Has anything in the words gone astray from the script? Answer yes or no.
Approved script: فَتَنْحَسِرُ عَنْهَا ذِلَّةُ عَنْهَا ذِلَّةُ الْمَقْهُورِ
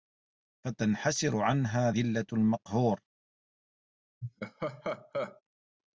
yes